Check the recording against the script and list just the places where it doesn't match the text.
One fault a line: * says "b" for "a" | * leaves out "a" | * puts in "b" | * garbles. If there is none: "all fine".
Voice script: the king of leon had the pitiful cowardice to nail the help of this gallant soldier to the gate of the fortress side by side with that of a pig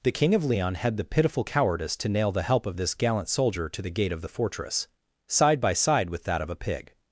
all fine